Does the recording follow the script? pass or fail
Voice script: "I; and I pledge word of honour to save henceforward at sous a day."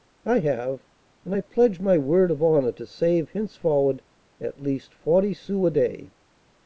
fail